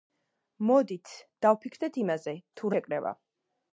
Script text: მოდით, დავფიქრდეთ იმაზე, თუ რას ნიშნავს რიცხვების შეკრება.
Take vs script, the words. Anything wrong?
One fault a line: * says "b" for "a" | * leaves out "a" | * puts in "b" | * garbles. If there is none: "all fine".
* leaves out "რას ნიშნავს რიცხვების"